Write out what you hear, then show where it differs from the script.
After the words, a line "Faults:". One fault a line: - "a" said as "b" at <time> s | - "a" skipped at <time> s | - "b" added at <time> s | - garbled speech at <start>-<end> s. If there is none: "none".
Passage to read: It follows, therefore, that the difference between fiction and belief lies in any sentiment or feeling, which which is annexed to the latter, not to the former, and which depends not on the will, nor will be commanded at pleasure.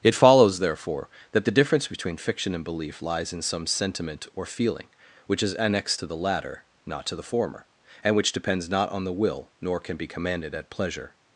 It follows, therefore, that the difference between fiction and belief lies in some sentiment or feeling, which is annexed to the latter, not to the former, and which depends not on the will, nor can be commanded at pleasure.
Faults:
- "any" said as "some" at 3.4 s
- "which" skipped at 5.4 s
- "will" said as "can" at 9.8 s